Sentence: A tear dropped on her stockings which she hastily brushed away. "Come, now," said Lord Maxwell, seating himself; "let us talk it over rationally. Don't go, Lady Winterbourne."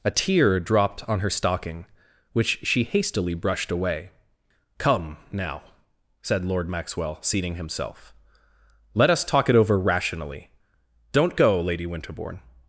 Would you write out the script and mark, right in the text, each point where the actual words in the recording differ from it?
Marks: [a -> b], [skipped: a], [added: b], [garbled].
A tear dropped on her [stockings -> stocking] which she hastily brushed away. "Come, now," said Lord Maxwell, seating himself; "let us talk it over rationally. Don't go, Lady Winterbourne."